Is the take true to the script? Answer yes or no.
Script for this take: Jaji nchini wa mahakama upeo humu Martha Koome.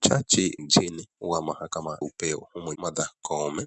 yes